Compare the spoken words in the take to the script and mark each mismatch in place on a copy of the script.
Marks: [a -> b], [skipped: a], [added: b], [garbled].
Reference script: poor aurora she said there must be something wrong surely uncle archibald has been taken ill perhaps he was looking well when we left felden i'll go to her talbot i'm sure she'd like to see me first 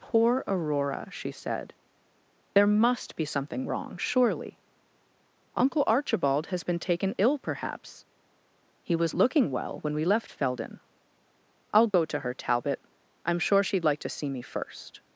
poor aurora she said there must be something wrong surely uncle archibald has been taken ill perhaps he was looking well when we left felden i'll go to her talbot i'm sure she'd like to see me first